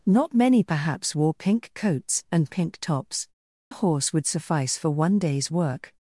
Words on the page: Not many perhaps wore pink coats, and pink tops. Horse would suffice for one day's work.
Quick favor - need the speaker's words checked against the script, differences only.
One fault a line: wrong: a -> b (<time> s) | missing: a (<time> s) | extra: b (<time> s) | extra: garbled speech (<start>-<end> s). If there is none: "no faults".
no faults